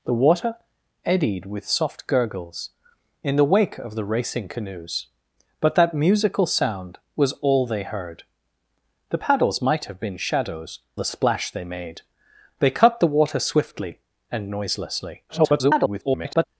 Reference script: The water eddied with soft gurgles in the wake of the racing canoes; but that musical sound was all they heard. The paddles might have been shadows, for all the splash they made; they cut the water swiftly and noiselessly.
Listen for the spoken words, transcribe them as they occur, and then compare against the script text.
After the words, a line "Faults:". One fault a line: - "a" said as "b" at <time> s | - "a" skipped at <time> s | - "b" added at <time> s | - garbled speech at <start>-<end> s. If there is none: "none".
The water eddied with soft gurgles in the wake of the racing canoes; but that musical sound was all they heard. The paddles might have been shadows, the splash they made; they cut the water swiftly and noiselessly. [garbled]
Faults:
- "for all" skipped at 10.8 s
- garbled speech at 15.3-16.4 s